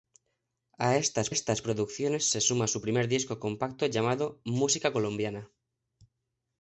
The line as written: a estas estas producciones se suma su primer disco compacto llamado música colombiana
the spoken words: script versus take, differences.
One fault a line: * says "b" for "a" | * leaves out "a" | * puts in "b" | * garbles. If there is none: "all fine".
all fine